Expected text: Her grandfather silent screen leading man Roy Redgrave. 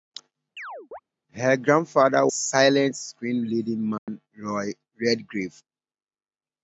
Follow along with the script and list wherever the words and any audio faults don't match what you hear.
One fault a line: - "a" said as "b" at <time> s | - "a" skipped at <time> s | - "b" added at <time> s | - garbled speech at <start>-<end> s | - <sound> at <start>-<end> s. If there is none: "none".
- chirp at 0.6-1.0 s
- dropout at 4.0-4.1 s